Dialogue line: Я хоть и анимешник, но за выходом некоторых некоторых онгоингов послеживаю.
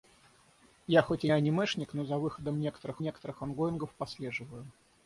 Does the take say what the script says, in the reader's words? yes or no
yes